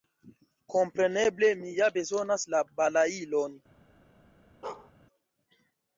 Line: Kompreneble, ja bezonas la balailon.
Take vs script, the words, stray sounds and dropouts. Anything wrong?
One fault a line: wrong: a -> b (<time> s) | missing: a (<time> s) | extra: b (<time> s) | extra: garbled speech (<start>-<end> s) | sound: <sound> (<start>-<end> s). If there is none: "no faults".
extra: mi (1.6 s)
sound: bark (4.6-4.9 s)